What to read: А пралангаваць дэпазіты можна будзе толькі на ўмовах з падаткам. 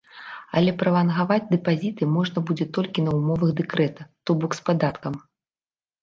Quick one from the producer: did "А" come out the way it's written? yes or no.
no